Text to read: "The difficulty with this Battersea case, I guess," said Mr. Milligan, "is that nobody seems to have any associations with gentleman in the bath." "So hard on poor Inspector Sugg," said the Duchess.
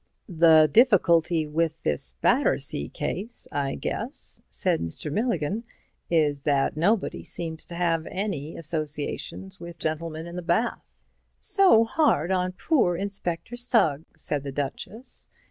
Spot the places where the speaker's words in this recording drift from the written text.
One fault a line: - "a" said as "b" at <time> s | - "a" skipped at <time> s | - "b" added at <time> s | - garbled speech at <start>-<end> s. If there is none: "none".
none